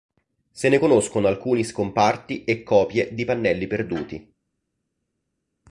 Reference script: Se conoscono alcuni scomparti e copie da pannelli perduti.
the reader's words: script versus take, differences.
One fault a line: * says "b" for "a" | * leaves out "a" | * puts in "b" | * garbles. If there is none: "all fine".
* puts in "ne"
* says "di" for "da"